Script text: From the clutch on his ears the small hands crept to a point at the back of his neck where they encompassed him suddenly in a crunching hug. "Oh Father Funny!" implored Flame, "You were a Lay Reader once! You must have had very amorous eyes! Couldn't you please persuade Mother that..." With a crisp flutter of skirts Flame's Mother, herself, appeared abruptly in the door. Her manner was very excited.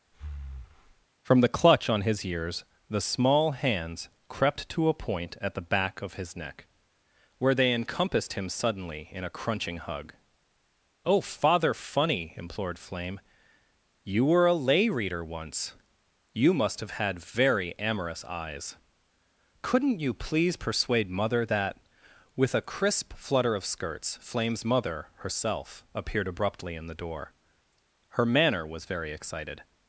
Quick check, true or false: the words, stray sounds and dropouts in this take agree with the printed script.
false